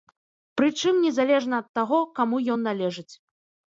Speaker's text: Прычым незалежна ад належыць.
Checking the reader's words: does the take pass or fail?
fail